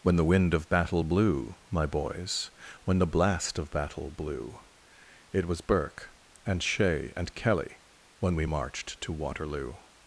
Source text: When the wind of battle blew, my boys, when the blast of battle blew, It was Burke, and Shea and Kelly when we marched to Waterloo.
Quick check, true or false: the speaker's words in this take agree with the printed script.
true